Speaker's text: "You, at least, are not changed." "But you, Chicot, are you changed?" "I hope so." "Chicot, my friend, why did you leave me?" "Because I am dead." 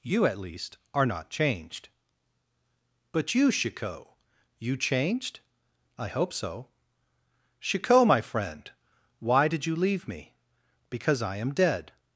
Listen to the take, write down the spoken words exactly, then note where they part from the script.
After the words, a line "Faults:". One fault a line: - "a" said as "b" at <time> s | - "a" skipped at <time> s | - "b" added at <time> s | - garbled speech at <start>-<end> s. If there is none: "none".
"You, at least, are not changed." "But you, Chicot, you changed?" "I hope so." "Chicot, my friend, why did you leave me?" "Because I am dead."
Faults:
- "are" skipped at 4.1 s